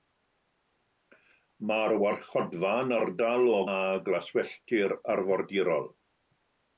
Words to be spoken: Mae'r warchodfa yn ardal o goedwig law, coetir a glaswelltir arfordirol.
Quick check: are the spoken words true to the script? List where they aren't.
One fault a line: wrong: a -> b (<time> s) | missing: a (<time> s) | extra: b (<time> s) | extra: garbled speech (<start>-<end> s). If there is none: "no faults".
missing: goedwig law coetir (3.6 s)